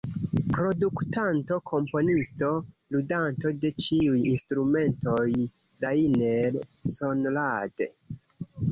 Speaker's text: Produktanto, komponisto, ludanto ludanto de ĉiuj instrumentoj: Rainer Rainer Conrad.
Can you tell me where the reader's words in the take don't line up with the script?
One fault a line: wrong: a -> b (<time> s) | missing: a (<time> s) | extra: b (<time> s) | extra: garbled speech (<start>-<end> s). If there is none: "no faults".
missing: ludanto (3.5 s)
missing: Rainer (6.6 s)